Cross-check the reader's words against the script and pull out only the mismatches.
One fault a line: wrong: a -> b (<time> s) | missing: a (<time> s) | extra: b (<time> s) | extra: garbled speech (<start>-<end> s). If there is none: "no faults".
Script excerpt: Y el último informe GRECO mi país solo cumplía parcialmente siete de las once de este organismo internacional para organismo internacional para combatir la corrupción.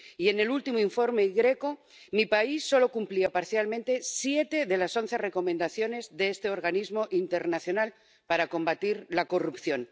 extra: en (0.3 s)
extra: recomendaciones (5.2 s)
missing: organismo internacional para (8.5 s)